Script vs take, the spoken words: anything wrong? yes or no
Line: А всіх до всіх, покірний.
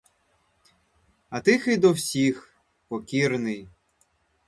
yes